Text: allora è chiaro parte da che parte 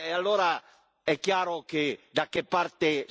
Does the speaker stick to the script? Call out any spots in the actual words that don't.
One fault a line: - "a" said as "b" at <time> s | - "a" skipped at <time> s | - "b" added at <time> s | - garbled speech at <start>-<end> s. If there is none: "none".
- "parte" said as "che" at 1.6 s